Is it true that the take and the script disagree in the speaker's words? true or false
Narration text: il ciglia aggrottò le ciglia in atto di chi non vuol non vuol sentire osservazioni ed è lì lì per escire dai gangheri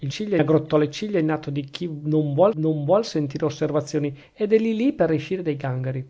false